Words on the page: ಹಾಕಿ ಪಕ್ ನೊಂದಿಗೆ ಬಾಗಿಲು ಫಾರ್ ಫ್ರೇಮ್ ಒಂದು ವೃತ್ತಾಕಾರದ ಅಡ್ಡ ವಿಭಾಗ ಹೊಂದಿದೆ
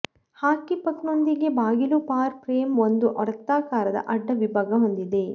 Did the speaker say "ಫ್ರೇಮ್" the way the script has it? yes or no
yes